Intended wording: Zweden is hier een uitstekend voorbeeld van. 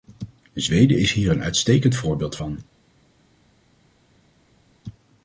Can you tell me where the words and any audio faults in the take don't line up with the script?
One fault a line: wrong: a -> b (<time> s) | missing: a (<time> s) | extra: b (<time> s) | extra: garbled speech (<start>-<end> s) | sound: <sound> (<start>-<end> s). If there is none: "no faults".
no faults